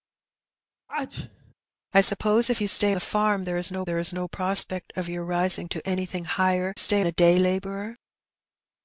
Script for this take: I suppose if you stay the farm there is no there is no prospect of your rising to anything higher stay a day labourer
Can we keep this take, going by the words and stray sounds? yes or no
no